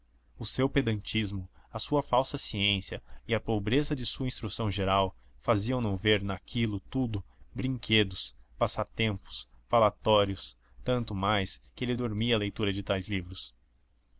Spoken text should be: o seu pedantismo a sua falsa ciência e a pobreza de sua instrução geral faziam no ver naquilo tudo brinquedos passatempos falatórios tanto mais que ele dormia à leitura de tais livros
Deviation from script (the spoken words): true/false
false